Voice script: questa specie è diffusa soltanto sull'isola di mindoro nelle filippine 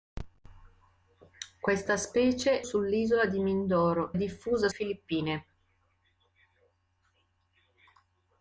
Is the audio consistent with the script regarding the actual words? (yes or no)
no